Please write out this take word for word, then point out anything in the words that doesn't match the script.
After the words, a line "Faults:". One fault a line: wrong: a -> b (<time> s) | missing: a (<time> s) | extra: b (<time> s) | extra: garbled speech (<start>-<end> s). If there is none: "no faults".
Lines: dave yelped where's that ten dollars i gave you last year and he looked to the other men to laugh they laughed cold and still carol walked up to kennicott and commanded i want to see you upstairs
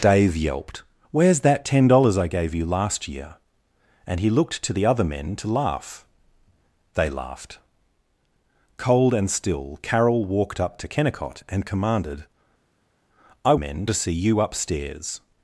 dave yelped where's that ten dollars i gave you last year and he looked to the other men to laugh they laughed cold and still carol walked up to kennicott and commanded i men to see you upstairs
Faults:
wrong: want -> men (13.5 s)